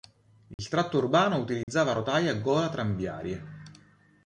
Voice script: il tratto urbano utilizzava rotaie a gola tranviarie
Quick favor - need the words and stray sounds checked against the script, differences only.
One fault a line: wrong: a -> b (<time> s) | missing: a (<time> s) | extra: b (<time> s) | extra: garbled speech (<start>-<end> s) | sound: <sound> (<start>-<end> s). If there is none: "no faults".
sound: dropout (0.5-0.6 s)
sound: dropout (1.6-1.7 s)